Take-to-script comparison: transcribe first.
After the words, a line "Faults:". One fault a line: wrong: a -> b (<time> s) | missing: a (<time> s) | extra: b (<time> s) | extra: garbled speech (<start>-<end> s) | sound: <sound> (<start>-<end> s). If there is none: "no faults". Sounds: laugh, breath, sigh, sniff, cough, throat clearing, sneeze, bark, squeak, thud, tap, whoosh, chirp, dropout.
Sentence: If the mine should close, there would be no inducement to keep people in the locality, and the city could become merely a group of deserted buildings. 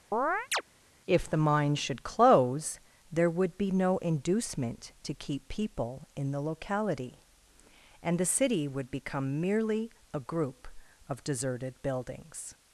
If the mine should close, there would be no inducement to keep people in the locality, and the city would become merely a group of deserted buildings.
Faults:
sound: chirp (0.1-0.6 s)
wrong: could -> would (8.7 s)